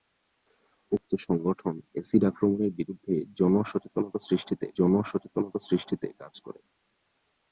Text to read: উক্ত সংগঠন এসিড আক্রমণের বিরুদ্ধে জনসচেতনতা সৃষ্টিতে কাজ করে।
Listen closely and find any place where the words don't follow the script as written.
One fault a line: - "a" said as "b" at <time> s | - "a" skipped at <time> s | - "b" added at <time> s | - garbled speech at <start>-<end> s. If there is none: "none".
- "জনসচেতনতা সৃষ্টিতে" added at 4.8 s